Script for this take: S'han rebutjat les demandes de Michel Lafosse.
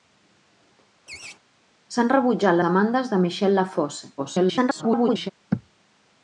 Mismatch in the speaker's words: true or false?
true